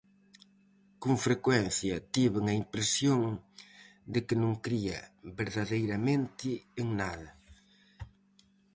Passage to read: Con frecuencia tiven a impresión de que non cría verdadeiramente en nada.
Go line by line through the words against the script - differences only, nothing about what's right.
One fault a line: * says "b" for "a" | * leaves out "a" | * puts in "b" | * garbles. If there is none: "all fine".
all fine